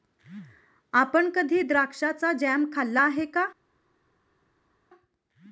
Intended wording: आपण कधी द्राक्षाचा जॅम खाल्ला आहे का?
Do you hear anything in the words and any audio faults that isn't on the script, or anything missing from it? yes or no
no